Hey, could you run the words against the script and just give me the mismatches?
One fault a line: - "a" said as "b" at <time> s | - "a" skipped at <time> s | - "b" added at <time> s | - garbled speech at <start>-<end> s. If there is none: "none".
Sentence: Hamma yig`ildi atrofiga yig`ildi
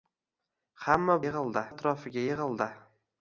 none